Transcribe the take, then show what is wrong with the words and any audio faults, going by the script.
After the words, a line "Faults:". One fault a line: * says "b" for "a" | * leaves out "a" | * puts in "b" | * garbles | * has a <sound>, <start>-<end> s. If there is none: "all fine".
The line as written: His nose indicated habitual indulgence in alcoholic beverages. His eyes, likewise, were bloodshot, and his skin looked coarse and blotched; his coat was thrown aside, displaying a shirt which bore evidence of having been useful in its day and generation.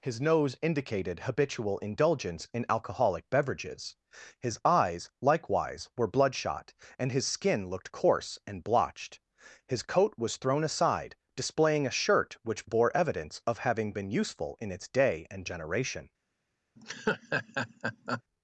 His nose indicated habitual indulgence in alcoholic beverages. His eyes, likewise, were bloodshot, and his skin looked coarse and blotched; his coat was thrown aside, displaying a shirt which bore evidence of having been useful in its day and generation.
Faults:
* has a laugh, 16.8-18.2 s